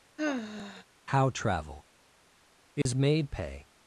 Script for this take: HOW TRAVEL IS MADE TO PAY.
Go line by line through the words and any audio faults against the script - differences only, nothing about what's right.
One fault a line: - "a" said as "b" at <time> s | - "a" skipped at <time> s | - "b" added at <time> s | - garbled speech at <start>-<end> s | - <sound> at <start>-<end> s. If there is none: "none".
- sigh at 0.2-0.8 s
- dropout at 2.8-2.9 s
- "TO" skipped at 3.3 s